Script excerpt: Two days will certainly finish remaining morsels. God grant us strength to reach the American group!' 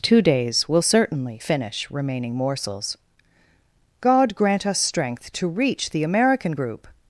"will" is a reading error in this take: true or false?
false